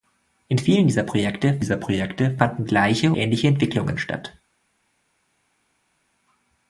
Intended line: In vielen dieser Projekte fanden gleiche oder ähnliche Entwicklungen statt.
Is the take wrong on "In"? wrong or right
right